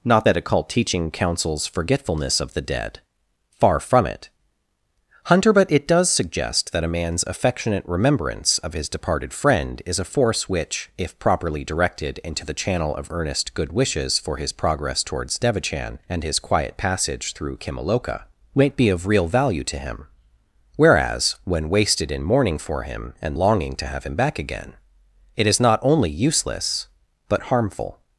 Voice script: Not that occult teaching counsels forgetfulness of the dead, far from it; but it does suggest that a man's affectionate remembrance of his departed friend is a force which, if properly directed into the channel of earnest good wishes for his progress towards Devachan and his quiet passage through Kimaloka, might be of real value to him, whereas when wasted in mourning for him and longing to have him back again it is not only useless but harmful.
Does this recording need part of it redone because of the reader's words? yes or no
yes